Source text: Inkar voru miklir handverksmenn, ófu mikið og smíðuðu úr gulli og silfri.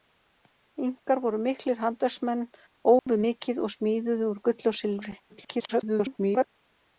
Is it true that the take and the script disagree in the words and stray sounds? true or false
true